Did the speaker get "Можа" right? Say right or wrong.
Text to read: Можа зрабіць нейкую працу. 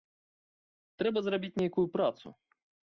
wrong